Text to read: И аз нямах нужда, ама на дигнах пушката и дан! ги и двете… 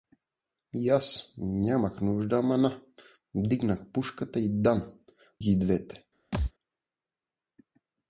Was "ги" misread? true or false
false